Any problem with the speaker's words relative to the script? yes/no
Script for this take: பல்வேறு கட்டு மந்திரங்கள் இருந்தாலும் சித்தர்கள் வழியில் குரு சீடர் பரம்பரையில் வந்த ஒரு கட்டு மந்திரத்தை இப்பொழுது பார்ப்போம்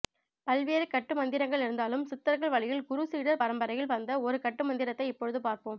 no